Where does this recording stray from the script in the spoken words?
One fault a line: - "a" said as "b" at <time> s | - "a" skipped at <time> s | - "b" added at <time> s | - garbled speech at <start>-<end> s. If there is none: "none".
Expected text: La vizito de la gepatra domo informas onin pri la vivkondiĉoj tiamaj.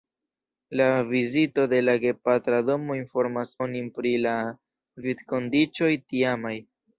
none